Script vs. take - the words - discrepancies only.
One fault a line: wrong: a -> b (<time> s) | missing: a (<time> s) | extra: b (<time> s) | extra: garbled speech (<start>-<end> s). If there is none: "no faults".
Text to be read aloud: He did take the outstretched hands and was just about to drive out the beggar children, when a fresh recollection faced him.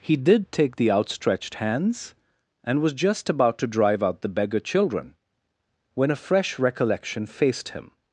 no faults